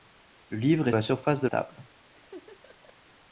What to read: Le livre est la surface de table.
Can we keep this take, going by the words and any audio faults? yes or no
no